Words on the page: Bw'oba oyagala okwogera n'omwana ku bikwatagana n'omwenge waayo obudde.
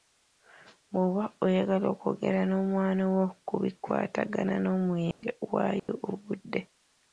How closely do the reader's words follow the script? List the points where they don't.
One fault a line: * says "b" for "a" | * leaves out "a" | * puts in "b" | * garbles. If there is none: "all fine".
* puts in "wo"